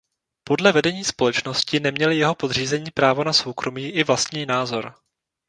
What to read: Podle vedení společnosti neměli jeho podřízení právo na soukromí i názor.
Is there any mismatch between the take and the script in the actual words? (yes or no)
yes